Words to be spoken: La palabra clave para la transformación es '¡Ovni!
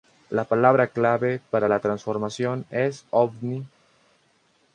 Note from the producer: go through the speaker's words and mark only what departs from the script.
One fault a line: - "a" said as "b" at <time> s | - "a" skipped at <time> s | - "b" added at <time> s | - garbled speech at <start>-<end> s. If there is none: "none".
none